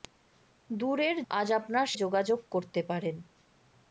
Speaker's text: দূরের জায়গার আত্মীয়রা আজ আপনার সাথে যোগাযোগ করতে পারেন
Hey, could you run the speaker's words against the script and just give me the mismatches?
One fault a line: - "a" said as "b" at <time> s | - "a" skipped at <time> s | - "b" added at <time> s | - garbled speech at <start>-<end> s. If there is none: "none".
- "জায়গার আত্মীয়রা" skipped at 1.2 s
- "সাথে" skipped at 1.9 s